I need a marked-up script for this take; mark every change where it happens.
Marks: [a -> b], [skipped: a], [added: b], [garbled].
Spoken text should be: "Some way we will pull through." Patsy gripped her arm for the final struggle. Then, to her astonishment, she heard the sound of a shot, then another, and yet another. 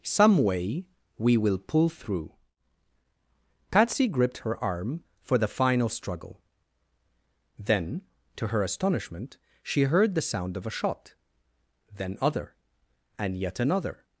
"Some way we will pull through." Patsy gripped her arm for the final struggle. Then, to her astonishment, she heard the sound of a shot, then [another, -> other] and yet another.